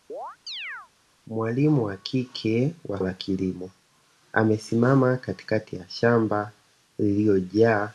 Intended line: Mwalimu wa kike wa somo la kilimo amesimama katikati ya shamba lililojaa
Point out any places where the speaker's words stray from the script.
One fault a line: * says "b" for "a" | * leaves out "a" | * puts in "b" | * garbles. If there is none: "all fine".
* leaves out "somo"